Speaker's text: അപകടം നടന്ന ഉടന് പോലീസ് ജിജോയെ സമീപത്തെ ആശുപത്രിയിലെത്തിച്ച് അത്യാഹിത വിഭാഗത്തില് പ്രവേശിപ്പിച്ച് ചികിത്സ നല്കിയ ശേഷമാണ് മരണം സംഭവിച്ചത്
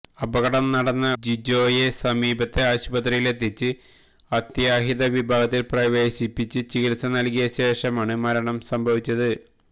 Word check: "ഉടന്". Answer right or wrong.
wrong